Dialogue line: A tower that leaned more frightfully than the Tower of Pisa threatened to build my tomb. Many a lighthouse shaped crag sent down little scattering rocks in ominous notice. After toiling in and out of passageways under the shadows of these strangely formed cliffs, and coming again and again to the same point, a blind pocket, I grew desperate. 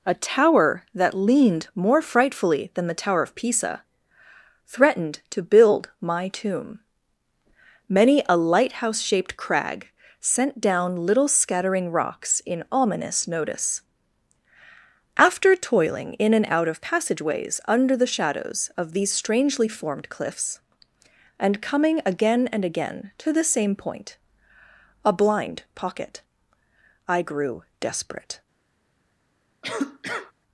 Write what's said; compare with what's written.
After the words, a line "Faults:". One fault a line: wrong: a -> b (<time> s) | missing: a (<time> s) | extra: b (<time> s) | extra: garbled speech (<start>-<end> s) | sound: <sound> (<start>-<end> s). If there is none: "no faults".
A tower that leaned more frightfully than the Tower of Pisa threatened to build my tomb. Many a lighthouse shaped crag sent down little scattering rocks in ominous notice. After toiling in and out of passageways under the shadows of these strangely formed cliffs, and coming again and again to the same point, a blind pocket, I grew desperate.
Faults:
sound: cough (29.6-30.3 s)